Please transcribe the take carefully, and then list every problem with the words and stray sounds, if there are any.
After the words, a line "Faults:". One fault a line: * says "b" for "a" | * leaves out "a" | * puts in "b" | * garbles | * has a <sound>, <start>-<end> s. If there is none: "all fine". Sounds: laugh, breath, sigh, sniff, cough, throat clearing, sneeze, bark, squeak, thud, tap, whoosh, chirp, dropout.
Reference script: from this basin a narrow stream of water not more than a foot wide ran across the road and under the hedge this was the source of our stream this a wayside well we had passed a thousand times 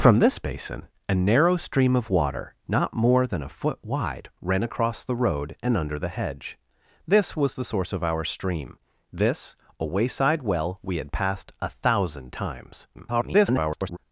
from this basin a narrow stream of water not more than a foot wide ran across the road and under the hedge this was the source of our stream this a wayside well we had passed a thousand times [garbled]
Faults:
* garbles